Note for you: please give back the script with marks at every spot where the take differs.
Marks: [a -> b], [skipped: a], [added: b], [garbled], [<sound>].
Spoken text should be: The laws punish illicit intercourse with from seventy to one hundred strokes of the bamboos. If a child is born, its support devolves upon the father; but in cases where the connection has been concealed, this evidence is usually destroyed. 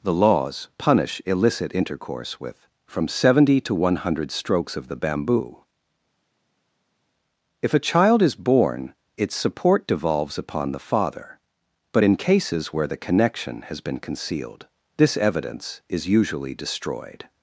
The laws punish illicit intercourse with from seventy to one hundred strokes of the [bamboos. -> bamboo] If a child is born, its support devolves upon the father; but in cases where the connection has been concealed, this evidence is usually destroyed.